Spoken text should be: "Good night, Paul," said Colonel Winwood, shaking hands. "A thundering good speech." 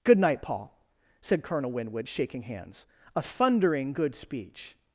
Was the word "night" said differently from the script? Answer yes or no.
no